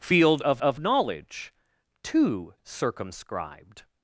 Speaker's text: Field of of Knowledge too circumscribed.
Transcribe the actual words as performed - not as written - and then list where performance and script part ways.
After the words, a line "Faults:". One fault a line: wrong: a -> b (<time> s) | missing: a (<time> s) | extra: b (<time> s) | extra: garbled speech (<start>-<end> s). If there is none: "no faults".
Field of of Knowledge too circumscribed.
Faults:
no faults